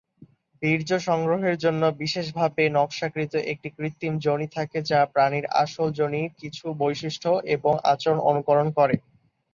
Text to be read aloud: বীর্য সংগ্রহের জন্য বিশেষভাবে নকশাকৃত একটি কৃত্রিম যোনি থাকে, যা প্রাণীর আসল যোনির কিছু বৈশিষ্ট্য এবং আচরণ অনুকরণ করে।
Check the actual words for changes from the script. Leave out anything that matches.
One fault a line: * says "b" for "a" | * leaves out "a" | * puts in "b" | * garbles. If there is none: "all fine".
all fine